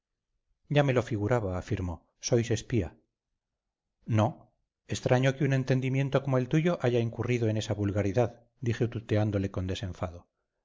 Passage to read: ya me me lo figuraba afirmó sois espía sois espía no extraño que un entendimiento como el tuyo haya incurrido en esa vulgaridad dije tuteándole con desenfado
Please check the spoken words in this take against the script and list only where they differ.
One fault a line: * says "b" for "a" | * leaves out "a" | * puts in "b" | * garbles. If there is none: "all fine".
* leaves out "me"
* leaves out "sois espía"